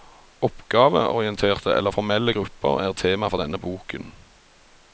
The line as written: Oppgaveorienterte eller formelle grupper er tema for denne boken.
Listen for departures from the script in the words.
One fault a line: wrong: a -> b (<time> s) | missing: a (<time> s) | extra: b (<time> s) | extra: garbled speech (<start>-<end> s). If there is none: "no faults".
no faults